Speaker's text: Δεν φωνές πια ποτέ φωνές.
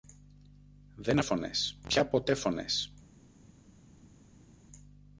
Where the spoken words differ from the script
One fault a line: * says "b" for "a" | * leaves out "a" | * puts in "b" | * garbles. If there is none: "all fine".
all fine